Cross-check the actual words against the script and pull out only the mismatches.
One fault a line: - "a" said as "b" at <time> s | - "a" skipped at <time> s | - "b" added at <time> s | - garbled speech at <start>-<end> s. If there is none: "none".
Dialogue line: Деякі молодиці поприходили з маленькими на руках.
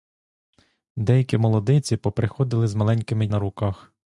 none